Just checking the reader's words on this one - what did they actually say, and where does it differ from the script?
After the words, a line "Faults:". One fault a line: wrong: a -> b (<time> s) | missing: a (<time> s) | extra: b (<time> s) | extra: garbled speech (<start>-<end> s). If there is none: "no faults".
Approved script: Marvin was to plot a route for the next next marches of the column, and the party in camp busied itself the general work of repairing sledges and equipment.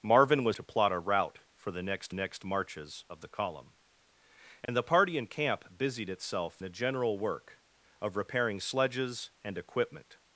Marvin was to plot a route for the next next marches of the column, and the party in camp busied itself the general work of repairing sledges and equipment.
Faults:
no faults